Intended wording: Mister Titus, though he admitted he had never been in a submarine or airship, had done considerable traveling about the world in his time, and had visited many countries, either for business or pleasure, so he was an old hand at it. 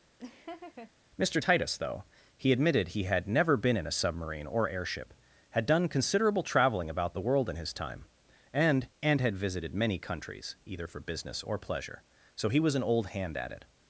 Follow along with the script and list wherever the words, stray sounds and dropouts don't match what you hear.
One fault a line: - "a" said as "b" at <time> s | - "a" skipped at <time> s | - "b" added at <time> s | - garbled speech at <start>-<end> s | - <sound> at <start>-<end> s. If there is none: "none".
- laugh at 0.2-0.9 s
- "and" added at 9.0 s